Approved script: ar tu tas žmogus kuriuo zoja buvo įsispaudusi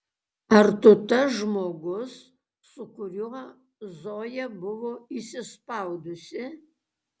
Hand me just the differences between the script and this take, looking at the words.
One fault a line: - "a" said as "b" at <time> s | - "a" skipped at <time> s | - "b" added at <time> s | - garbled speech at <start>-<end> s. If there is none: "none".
- "su" added at 2.7 s